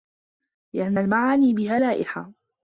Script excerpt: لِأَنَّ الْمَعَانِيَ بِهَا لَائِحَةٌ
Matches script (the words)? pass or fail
pass